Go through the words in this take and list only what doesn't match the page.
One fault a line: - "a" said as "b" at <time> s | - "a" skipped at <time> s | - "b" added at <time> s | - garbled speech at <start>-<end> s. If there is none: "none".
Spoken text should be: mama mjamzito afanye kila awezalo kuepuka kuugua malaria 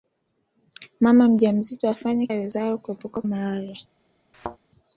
- "kila" skipped at 2.3 s
- "kuugua" skipped at 3.2 s